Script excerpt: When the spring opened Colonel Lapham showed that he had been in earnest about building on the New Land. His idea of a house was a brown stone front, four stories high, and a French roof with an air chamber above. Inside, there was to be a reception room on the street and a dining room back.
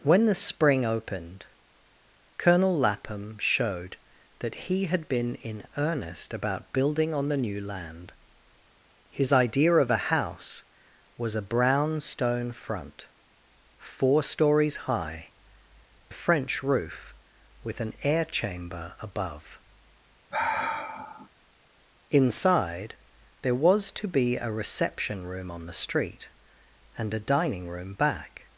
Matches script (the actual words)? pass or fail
fail